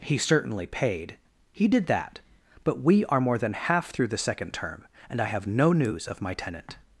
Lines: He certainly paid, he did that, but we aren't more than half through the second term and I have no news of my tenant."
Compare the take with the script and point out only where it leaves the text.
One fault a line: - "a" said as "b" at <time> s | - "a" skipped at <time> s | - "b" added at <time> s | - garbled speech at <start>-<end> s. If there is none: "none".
- "aren't" said as "are" at 3.0 s